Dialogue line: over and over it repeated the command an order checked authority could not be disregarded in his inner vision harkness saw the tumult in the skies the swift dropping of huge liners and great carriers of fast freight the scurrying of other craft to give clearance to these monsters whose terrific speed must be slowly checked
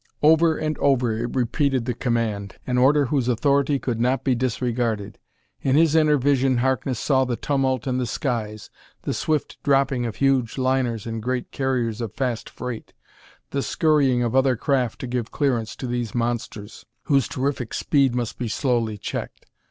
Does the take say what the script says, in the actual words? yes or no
no